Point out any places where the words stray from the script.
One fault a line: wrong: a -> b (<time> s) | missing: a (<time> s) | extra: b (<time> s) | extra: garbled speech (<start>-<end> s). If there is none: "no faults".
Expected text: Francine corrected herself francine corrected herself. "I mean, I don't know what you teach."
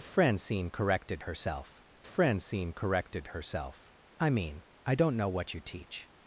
no faults